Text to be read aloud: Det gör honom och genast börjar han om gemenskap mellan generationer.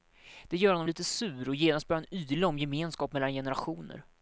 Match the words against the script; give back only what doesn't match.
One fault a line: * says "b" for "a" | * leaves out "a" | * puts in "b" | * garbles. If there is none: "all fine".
* puts in "lite sur"
* puts in "yla"